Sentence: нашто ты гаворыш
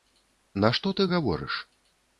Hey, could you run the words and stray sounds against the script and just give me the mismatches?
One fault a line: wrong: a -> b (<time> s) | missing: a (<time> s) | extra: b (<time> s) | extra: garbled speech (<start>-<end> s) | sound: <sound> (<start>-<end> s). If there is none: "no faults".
no faults